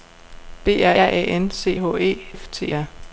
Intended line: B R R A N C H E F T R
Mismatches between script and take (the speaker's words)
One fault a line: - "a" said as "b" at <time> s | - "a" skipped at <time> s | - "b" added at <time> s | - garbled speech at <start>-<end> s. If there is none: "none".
none